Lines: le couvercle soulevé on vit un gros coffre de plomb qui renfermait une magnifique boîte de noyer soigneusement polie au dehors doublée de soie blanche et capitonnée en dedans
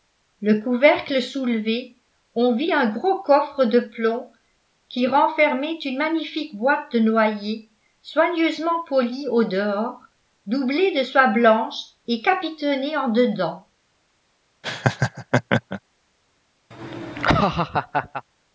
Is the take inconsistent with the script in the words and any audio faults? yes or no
yes